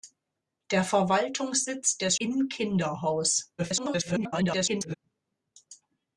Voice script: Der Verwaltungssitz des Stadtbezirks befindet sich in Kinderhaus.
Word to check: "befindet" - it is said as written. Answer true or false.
false